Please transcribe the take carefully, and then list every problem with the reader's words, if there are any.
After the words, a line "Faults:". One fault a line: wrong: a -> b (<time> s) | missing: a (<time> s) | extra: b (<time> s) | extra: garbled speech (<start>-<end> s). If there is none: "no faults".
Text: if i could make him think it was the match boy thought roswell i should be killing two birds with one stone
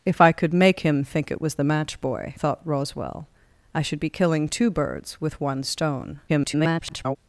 if i could make him think it was the match boy thought roswell i should be killing two birds with one stone [garbled]
Faults:
extra: garbled speech (6.3-7.2 s)